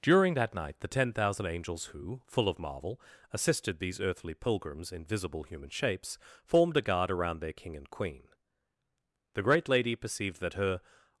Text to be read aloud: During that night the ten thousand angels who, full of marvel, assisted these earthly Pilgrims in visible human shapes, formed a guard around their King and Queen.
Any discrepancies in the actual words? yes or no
yes